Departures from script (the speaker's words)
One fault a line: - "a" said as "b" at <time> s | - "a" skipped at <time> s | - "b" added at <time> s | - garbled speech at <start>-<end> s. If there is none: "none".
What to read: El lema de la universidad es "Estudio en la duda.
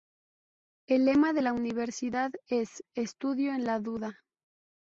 none